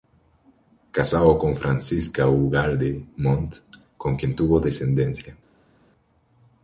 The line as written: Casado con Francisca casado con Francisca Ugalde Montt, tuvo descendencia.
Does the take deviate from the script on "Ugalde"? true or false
true